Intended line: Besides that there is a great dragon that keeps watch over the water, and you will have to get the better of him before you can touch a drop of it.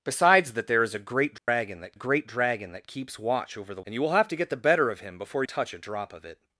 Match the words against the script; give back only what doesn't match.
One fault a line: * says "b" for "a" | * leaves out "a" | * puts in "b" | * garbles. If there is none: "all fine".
* puts in "great dragon that"
* leaves out "water"
* leaves out "you can"